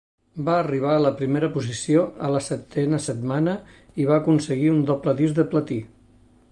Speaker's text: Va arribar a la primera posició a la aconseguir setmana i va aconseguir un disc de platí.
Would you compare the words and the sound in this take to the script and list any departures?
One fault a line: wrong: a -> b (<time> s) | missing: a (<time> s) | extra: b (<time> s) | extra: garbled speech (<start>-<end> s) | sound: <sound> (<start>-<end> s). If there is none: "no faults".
wrong: aconseguir -> setena (2.5 s)
extra: doble (4.9 s)